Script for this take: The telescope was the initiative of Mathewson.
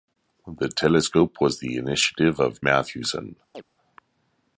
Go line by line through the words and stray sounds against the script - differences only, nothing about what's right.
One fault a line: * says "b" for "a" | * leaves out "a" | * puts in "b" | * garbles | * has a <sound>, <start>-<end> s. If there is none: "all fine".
* has a chirp, 3.5-3.6 s